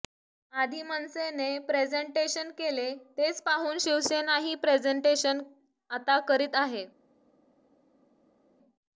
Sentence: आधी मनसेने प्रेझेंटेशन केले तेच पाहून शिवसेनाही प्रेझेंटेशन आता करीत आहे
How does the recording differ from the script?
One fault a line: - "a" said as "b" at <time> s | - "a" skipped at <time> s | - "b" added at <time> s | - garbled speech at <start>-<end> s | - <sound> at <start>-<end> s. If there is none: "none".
none